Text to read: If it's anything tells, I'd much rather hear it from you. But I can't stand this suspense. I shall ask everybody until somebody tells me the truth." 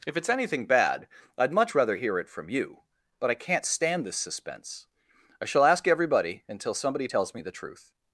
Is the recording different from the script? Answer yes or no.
yes